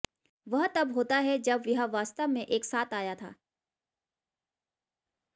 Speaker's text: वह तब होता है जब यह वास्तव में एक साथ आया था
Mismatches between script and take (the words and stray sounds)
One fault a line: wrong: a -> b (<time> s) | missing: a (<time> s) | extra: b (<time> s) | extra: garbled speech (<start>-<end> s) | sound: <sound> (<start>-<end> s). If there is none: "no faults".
no faults